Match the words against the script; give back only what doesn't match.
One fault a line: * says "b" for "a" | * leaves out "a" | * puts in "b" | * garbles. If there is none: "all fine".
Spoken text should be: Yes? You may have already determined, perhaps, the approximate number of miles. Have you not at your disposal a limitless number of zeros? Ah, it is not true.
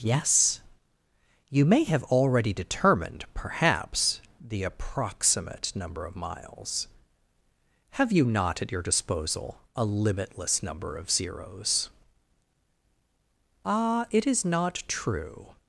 all fine